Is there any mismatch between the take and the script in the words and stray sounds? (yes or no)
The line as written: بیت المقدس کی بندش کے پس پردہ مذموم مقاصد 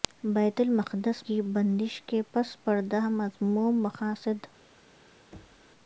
yes